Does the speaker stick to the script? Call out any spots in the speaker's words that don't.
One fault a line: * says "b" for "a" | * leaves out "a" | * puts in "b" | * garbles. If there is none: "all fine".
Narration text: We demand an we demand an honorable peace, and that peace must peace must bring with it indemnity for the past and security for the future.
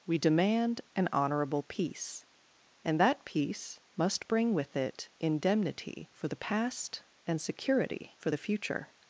* leaves out "we demand an"
* leaves out "peace must"